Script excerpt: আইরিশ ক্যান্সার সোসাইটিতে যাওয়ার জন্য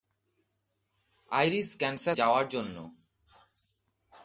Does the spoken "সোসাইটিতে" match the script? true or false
false